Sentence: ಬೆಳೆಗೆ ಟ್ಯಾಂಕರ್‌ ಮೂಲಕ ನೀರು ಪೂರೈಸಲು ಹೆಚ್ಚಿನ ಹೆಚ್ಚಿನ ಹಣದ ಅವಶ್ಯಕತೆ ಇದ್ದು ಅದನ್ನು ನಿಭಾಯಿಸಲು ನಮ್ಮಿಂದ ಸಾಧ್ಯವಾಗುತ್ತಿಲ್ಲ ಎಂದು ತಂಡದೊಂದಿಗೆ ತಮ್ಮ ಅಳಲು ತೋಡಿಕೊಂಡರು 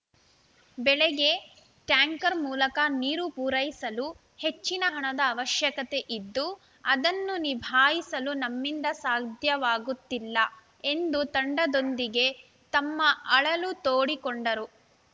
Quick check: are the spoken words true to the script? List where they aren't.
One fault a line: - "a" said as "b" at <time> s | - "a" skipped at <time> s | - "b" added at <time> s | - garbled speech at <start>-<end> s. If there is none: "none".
- "ಹೆಚ್ಚಿನ" skipped at 4.8 s